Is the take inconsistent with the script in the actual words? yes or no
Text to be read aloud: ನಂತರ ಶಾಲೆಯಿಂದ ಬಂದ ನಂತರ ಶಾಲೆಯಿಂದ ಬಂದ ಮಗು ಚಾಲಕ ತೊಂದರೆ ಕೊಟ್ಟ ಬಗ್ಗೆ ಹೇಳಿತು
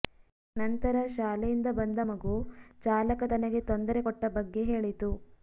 yes